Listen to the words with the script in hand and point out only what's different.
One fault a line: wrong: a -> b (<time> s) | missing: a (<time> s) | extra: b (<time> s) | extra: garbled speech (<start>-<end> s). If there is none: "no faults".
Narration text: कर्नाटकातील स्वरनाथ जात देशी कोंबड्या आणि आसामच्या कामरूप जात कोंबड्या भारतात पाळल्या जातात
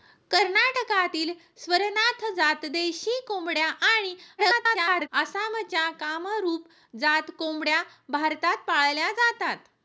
extra: garbled speech (4.4-5.1 s)